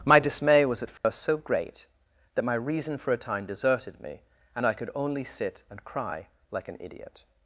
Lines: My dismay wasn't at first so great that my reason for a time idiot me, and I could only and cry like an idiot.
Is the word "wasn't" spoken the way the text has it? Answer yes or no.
no